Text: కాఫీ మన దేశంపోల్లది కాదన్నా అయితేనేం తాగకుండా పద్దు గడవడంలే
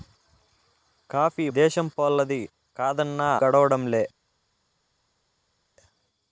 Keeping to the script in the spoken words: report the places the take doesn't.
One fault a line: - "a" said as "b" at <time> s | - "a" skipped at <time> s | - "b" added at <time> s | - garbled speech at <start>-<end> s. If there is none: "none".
- "మన" skipped at 1.4 s
- "అయితేనేం తాగకుండా పద్దు" skipped at 3.3 s